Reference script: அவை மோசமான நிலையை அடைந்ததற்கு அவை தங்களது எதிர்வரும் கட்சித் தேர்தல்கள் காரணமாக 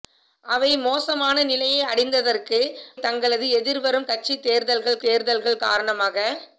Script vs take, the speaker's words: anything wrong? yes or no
yes